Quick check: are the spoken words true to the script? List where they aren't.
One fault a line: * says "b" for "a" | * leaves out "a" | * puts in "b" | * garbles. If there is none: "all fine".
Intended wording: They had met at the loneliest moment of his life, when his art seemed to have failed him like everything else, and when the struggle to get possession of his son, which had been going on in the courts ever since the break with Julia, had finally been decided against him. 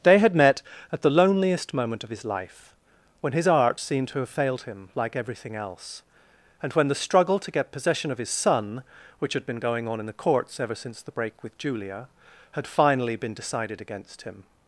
all fine